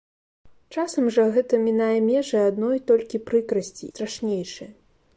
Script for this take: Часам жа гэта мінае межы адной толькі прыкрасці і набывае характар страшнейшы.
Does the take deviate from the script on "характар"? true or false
true